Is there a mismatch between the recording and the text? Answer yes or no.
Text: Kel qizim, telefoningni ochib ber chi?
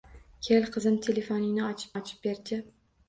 yes